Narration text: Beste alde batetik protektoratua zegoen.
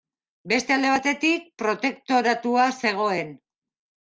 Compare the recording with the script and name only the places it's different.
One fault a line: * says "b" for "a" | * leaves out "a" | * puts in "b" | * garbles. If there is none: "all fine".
all fine